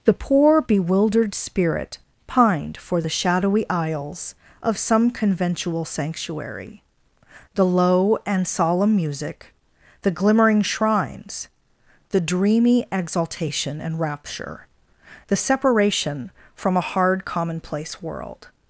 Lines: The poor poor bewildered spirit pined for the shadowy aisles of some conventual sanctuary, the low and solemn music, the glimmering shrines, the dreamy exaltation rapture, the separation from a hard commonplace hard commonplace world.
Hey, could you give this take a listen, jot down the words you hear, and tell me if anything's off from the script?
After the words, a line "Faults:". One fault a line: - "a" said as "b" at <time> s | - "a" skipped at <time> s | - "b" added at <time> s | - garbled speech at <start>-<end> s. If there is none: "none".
The poor bewildered spirit pined for the shadowy aisles of some conventual sanctuary, the low and solemn music, the glimmering shrines, the dreamy exaltation and rapture, the separation from a hard commonplace world.
Faults:
- "poor" skipped at 0.6 s
- "and" added at 13.8 s
- "hard commonplace" skipped at 18.0 s